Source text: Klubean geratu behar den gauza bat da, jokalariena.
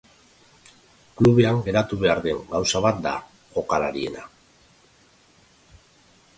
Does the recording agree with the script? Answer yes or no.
yes